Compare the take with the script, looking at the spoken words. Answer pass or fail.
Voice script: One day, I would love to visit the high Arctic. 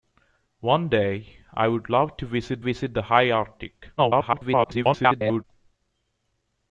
fail